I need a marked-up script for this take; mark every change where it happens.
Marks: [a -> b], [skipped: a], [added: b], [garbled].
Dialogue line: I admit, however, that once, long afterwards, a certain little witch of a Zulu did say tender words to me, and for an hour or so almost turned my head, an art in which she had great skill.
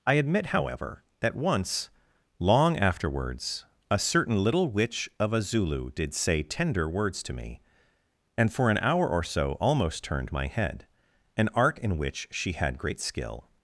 I admit, however, that once, long afterwards, a certain little witch of a Zulu did say tender words to me, and for an hour or so almost turned my head, an art in which she had great skill.